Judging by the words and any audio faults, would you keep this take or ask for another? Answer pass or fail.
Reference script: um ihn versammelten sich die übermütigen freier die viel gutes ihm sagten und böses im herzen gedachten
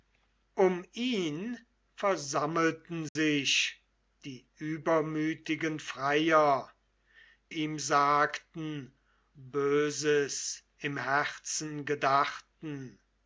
fail